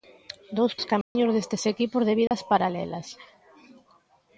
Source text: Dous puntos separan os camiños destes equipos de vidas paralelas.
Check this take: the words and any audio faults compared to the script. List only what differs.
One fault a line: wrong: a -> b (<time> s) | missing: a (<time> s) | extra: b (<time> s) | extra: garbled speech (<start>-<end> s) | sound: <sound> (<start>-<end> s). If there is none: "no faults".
missing: puntos separan (0.7 s)
sound: dropout (1.0-1.2 s)
sound: dropout (2.3-2.3 s)